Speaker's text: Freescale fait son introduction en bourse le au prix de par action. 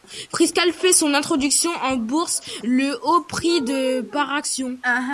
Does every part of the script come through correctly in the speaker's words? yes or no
yes